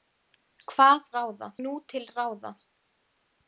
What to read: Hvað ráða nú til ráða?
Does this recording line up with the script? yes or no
yes